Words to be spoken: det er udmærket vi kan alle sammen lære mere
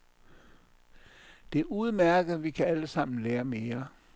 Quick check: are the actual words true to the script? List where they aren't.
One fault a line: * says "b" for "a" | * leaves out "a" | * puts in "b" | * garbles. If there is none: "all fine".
all fine